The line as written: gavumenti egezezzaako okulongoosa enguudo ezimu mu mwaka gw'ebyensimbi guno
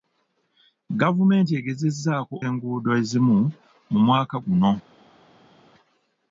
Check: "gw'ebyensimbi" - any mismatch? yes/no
yes